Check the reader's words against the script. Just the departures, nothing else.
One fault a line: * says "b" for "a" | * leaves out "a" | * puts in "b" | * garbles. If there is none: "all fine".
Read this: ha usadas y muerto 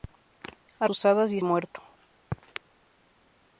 all fine